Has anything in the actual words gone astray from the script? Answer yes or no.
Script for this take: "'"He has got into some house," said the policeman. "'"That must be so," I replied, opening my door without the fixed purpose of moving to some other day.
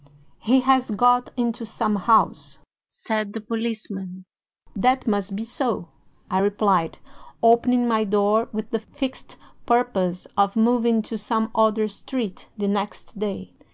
yes